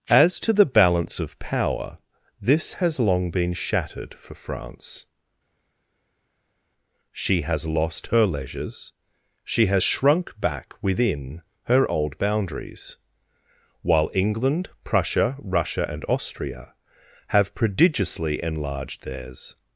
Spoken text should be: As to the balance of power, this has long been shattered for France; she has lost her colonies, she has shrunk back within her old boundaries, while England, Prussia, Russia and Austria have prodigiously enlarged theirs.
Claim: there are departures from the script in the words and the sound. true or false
true